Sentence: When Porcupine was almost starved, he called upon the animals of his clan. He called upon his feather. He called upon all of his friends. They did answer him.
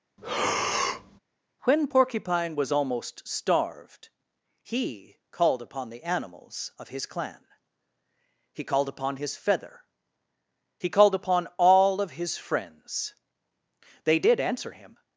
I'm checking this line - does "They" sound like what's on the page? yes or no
yes